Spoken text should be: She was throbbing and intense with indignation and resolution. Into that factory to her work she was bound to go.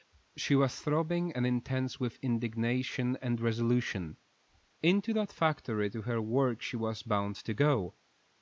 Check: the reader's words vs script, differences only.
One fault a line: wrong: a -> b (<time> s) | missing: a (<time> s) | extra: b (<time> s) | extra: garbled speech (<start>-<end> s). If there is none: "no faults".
no faults